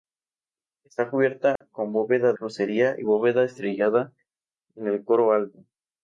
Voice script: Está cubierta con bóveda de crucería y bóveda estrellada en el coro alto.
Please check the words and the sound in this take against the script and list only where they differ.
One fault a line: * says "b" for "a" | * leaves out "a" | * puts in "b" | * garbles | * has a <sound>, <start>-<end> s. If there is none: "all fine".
* has a dropout, 1.6-1.6 s
* leaves out "de"